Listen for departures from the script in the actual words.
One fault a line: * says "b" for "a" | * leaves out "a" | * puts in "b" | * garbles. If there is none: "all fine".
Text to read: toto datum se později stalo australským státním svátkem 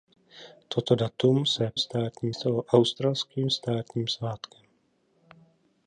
* says "státním" for "později"